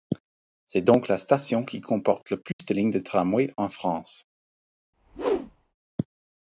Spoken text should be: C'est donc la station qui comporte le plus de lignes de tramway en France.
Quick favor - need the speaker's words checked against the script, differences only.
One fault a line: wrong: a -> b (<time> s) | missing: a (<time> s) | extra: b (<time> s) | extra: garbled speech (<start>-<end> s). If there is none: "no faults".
no faults